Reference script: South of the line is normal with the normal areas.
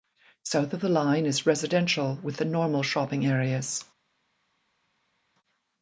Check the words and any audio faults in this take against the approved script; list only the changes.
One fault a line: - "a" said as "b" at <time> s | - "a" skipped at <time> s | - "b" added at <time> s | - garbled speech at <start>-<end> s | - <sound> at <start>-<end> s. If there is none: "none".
- "normal" said as "residential" at 1.4 s
- "shopping" added at 2.8 s